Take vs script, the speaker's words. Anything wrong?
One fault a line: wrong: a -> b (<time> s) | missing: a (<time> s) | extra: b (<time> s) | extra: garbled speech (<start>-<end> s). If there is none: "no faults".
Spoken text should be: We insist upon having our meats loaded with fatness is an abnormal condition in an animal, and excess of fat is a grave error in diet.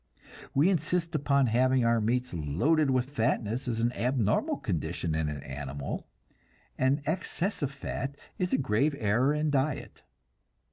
no faults